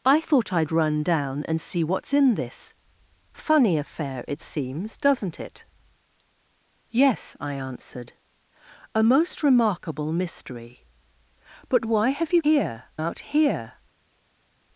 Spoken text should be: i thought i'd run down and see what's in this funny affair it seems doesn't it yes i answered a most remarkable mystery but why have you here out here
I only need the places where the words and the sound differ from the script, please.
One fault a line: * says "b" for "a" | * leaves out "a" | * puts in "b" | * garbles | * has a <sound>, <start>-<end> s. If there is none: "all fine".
all fine